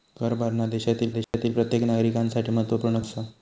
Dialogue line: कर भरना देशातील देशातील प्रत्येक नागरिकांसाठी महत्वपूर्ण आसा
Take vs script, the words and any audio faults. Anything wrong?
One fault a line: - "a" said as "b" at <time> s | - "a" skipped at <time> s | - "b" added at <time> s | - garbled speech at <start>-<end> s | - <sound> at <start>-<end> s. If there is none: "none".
- dropout at 1.2-1.3 s